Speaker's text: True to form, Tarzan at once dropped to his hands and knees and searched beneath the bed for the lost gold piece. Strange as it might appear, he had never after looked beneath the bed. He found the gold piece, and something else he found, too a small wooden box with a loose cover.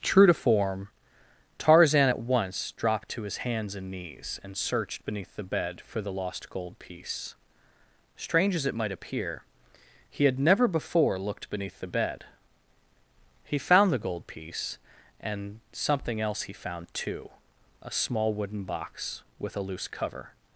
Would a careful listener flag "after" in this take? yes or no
yes